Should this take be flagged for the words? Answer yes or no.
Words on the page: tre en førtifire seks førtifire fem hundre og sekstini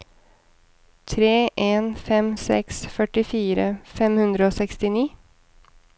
yes